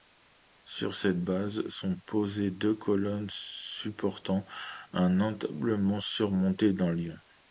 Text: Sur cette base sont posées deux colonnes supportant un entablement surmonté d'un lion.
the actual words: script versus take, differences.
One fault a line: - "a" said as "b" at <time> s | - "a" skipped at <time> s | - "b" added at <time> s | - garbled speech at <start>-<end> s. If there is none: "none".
none